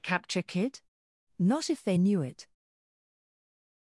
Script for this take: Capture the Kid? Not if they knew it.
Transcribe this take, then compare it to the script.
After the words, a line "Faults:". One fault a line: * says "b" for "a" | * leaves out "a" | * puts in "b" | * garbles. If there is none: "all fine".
Capture Kid? Not if they knew it.
Faults:
* leaves out "the"